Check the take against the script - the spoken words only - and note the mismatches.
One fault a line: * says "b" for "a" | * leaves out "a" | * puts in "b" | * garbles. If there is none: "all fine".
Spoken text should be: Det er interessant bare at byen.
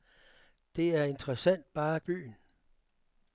all fine